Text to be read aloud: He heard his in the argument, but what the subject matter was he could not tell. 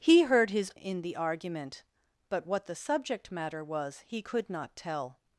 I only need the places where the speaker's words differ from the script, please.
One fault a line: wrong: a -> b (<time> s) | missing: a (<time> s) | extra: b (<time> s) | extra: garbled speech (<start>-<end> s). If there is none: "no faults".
no faults